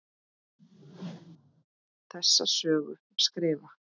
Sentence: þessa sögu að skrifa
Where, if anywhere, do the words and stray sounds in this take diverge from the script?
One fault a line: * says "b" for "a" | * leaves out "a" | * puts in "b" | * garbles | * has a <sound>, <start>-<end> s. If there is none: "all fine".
* has a whoosh, 0.6-1.6 s